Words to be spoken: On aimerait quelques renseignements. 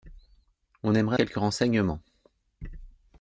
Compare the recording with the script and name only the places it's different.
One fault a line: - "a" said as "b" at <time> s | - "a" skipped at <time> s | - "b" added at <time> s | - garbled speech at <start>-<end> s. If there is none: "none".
none